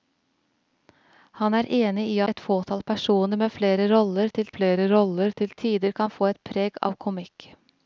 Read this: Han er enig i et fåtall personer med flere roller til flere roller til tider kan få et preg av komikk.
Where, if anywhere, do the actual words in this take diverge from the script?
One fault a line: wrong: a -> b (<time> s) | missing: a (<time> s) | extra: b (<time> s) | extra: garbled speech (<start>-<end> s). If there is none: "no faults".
no faults